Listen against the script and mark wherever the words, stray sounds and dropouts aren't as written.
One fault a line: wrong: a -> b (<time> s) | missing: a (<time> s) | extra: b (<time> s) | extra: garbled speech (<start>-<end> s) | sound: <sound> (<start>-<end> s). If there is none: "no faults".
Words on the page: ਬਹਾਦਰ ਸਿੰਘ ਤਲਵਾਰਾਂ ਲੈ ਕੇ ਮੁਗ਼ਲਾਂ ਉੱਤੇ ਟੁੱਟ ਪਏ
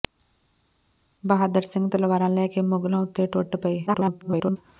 extra: garbled speech (3.9-4.6 s)